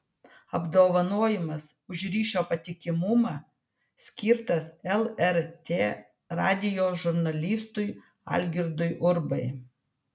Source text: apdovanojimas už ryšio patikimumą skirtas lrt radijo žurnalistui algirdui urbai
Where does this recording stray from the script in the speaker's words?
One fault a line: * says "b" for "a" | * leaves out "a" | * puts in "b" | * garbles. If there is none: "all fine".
all fine